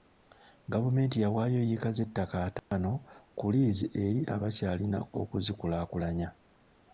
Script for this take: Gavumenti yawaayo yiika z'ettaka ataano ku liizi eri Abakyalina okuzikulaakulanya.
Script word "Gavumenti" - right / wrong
right